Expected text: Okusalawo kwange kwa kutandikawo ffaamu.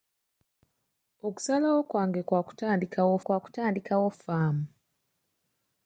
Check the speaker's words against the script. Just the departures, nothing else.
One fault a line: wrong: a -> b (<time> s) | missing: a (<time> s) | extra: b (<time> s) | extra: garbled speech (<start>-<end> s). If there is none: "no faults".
extra: kwa kutandikawo (3.2 s)